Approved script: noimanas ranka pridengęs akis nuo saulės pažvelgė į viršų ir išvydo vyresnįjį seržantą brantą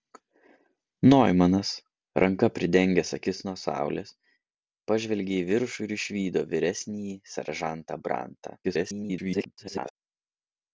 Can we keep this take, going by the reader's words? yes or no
no